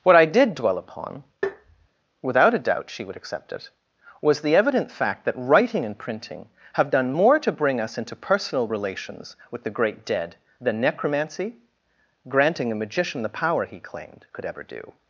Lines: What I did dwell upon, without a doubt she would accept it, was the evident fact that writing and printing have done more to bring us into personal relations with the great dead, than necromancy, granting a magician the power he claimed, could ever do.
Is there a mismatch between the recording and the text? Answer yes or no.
no